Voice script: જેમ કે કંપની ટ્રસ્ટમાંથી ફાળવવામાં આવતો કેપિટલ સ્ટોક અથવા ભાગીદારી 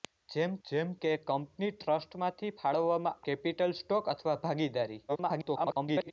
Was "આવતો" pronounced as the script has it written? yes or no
no